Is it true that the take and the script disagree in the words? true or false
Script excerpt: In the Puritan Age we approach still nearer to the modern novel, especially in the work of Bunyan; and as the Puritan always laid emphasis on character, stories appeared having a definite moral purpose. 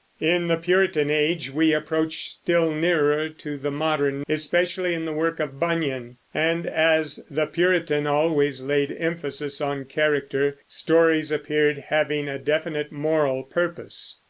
true